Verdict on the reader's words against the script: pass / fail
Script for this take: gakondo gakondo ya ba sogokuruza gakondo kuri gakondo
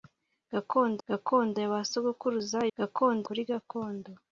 pass